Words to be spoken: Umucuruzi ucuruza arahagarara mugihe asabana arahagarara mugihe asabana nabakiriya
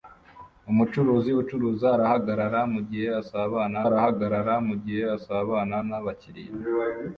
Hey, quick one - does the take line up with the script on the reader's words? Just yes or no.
yes